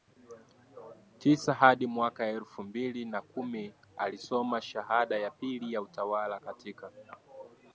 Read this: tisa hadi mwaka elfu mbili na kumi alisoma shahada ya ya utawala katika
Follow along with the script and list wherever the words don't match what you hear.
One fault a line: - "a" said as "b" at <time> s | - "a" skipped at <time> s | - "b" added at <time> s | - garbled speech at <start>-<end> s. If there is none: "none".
- "pili" added at 5.3 s